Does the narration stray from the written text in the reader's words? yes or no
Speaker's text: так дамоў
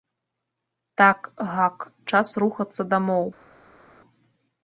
yes